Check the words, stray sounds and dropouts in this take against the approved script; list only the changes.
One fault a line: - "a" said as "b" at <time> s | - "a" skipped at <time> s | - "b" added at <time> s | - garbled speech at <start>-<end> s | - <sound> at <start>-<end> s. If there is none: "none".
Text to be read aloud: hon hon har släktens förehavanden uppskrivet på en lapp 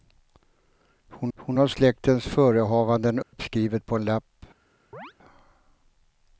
- dropout at 3.2-3.3 s
- chirp at 4.9-5.1 s